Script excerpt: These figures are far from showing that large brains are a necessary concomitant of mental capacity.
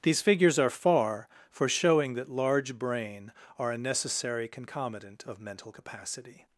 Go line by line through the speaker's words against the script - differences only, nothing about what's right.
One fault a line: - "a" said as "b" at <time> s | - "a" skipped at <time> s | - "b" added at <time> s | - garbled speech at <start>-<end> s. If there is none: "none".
- "from" said as "for" at 1.5 s
- "brains" said as "brain" at 2.8 s